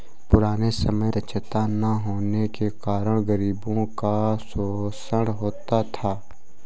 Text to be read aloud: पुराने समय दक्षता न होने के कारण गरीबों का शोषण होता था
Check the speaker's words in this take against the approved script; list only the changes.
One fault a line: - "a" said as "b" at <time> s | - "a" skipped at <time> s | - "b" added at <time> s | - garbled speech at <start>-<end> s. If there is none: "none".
none